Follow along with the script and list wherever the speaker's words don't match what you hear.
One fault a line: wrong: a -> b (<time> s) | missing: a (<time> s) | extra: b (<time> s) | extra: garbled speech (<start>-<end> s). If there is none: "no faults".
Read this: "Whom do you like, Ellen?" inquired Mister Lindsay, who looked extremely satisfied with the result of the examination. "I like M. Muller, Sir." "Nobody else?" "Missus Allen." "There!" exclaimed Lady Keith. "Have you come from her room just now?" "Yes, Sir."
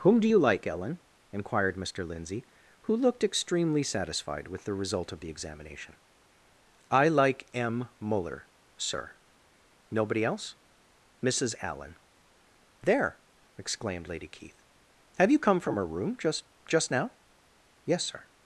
extra: just (16.7 s)